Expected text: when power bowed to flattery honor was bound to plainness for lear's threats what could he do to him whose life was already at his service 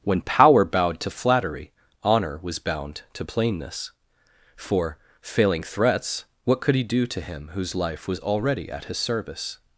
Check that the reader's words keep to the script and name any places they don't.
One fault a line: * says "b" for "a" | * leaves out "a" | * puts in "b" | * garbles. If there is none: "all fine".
* says "failing" for "lear's"